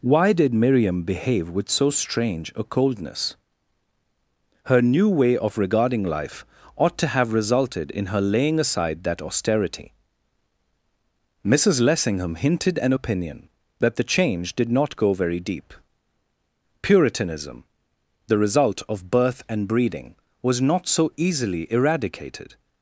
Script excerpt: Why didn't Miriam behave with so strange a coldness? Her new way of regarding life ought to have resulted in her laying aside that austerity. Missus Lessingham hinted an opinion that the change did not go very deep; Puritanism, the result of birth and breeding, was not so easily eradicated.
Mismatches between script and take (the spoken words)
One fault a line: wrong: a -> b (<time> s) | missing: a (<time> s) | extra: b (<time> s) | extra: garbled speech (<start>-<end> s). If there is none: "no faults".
wrong: didn't -> did (0.3 s)